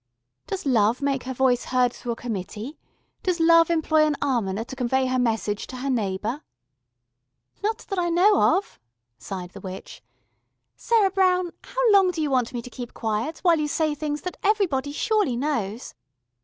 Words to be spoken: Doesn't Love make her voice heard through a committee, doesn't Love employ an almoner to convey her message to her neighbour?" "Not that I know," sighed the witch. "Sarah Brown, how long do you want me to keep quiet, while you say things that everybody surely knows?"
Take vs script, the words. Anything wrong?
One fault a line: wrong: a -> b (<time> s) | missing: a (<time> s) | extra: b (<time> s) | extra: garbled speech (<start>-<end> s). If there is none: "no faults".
wrong: Doesn't -> Does (0.5 s)
wrong: doesn't -> does (3.2 s)
extra: of (8.6 s)